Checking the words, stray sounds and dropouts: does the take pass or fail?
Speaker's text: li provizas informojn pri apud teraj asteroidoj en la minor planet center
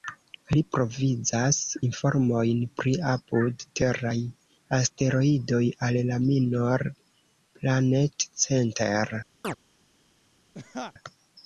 fail